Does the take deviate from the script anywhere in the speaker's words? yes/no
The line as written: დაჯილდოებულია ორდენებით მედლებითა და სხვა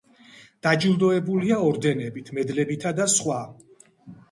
no